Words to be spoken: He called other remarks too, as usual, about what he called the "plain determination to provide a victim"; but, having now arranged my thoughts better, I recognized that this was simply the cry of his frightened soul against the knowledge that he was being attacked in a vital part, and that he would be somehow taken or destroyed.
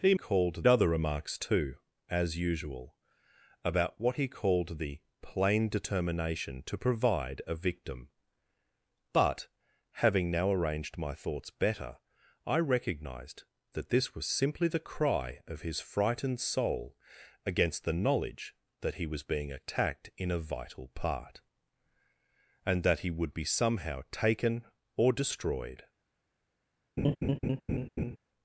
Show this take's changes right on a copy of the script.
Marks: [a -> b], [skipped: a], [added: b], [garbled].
He called other remarks too, as usual, about what he called the "plain determination to provide a victim"; but, having now arranged my thoughts better, I recognized that this was simply the cry of his frightened soul against the knowledge that he was being attacked in a vital part, and that he would be somehow taken or destroyed.